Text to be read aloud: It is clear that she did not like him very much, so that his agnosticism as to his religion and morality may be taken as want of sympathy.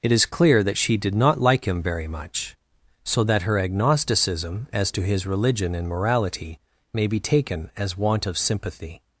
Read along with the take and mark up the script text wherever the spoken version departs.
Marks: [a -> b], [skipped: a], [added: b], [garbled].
It is clear that she did not like him very much, so that [his -> her] agnosticism as to his religion and morality may be taken as want of sympathy.